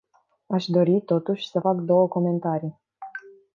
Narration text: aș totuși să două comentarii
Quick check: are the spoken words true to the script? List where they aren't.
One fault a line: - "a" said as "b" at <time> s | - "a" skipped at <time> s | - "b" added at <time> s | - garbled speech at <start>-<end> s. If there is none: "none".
- "dori" added at 0.7 s
- "fac" added at 1.6 s